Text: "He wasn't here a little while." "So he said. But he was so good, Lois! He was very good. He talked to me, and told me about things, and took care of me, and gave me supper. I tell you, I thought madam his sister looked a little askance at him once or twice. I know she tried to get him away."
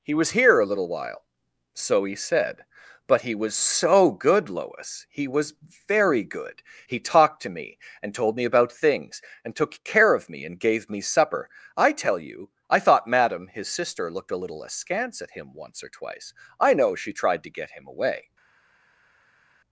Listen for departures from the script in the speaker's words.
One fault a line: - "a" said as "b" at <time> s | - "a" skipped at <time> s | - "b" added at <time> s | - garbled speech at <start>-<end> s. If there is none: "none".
- "wasn't" said as "was" at 0.1 s